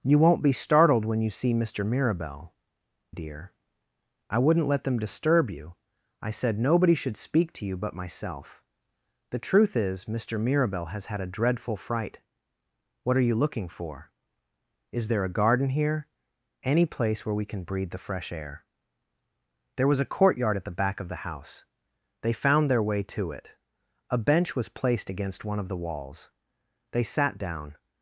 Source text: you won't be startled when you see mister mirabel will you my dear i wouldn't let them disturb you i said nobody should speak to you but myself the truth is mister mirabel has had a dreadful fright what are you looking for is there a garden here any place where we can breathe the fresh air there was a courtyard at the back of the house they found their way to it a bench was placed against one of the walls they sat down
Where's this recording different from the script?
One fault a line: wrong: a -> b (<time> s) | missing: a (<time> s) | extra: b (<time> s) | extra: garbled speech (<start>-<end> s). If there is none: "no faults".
missing: will you my (2.5 s)